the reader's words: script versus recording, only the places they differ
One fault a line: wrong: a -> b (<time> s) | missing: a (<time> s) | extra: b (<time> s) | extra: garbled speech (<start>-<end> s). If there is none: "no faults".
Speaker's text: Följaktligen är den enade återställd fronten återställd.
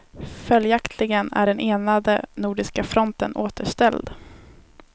wrong: återställd -> nordiska (2.3 s)